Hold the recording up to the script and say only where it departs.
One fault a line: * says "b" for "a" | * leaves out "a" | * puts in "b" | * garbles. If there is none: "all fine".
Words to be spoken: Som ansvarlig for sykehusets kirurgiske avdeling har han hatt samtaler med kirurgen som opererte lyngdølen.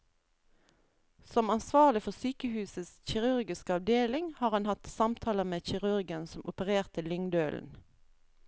all fine